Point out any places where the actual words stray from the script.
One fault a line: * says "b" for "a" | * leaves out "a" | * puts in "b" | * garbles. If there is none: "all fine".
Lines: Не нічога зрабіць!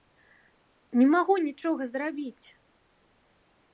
* puts in "магу"